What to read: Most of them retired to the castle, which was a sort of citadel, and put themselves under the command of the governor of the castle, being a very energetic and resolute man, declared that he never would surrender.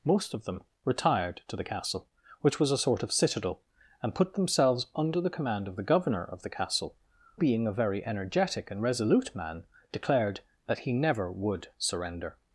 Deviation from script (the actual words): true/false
false